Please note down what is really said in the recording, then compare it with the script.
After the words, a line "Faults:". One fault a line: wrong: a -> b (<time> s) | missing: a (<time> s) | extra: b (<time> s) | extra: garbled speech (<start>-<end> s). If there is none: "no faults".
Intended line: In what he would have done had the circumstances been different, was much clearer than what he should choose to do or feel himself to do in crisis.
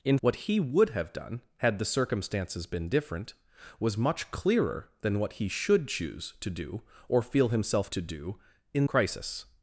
In what he would have done had the circumstances been different, was much clearer than what he should choose to do or feel himself to do in crisis.
Faults:
no faults